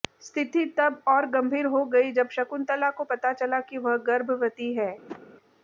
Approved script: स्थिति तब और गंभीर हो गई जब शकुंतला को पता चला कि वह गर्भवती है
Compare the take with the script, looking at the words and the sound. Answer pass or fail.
fail